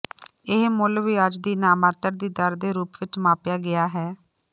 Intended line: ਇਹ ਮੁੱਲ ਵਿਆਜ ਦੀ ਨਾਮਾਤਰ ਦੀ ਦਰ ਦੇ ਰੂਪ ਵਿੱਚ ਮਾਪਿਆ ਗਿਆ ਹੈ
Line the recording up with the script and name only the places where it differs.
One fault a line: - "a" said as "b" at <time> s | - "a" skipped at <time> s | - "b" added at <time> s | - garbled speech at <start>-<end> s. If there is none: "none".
none